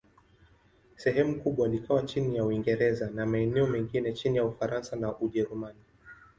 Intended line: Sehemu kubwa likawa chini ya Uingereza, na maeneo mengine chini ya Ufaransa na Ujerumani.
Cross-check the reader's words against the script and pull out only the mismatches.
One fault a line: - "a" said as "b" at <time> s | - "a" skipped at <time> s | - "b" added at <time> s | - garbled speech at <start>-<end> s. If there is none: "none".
none